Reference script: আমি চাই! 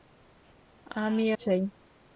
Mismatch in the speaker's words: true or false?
false